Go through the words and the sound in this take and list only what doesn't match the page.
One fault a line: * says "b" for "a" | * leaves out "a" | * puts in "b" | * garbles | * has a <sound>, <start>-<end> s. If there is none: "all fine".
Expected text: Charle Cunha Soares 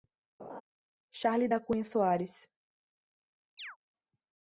* has a laugh, 0.4-0.6 s
* puts in "da"
* has a chirp, 3.6-3.8 s